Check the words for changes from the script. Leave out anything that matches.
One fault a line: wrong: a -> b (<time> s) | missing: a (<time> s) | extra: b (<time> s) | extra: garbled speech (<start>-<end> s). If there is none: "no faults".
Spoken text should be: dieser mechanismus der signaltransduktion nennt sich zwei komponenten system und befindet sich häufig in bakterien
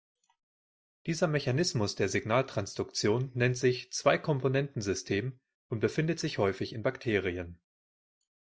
no faults